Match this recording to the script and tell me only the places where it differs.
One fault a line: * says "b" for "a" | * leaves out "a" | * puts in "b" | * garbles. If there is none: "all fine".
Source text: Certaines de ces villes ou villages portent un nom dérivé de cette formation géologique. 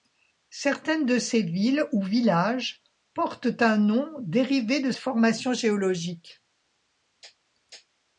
* leaves out "cette"